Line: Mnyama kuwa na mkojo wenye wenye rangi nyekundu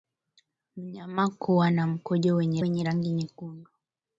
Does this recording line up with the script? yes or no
yes